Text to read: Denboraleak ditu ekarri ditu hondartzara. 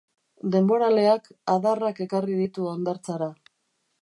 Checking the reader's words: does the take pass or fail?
fail